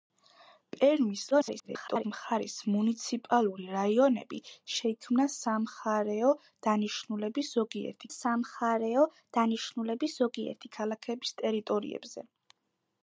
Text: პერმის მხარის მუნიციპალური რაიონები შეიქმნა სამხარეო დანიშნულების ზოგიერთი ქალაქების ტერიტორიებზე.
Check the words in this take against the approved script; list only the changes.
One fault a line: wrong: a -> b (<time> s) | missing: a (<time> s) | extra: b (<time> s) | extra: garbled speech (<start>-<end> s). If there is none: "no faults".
extra: garbled speech (1.3-2.0 s)
extra: სამხარეო დანიშნულების ზოგიერთი (8.1 s)